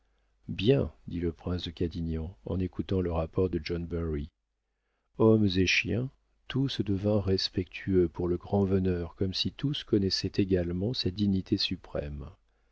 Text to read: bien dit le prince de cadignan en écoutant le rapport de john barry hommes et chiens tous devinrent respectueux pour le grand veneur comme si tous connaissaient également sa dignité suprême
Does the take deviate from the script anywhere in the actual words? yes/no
no